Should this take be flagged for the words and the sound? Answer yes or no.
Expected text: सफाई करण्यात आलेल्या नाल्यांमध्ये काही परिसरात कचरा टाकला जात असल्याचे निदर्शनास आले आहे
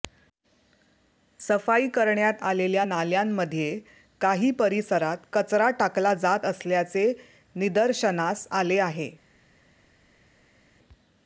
no